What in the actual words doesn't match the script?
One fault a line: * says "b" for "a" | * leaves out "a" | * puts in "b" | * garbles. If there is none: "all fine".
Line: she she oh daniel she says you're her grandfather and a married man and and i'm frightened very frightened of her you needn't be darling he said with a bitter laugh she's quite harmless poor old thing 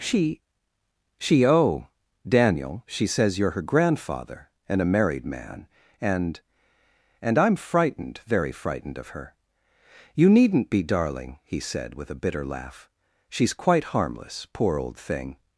all fine